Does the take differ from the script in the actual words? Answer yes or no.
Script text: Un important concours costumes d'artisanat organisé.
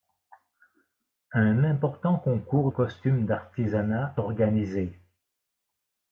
no